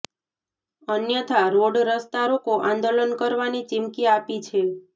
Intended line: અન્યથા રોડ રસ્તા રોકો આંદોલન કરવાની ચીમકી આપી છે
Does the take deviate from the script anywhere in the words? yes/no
no